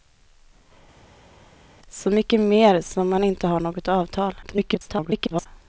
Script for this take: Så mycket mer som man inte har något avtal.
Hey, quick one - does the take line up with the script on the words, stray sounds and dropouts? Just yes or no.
no